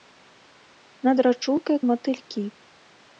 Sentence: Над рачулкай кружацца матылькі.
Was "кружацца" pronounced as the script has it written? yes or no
no